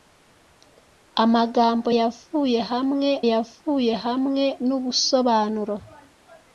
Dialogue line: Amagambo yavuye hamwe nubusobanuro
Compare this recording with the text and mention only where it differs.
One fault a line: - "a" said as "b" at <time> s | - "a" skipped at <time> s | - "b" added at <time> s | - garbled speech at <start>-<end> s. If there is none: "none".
- "yavuye hamwe" added at 3.3 s